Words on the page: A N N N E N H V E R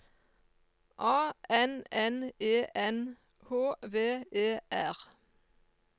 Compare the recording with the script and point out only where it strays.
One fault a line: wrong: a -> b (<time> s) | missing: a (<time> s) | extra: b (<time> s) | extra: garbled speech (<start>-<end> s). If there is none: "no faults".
missing: N (2.3 s)